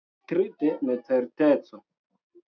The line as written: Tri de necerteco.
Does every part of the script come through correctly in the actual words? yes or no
yes